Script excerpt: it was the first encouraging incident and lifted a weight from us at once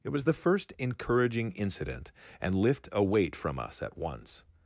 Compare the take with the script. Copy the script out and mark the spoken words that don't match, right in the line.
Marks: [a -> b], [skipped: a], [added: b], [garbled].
it was the first encouraging incident and [lifted -> lift] a weight from us at once